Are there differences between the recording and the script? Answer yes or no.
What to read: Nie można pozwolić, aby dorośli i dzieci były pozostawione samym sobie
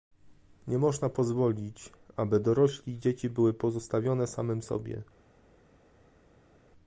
no